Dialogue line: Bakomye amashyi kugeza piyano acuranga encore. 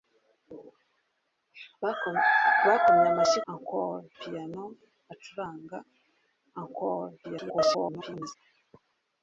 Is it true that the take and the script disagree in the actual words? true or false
true